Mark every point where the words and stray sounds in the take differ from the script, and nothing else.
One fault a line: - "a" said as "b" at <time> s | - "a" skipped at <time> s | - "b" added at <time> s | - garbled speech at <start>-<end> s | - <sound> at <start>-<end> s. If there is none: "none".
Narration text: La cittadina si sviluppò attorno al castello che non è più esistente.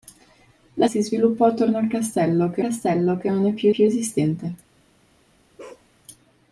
- "cittadina" skipped at 0.9 s
- "castello che" added at 2.6 s
- "più" added at 3.7 s
- bark at 5.6-5.9 s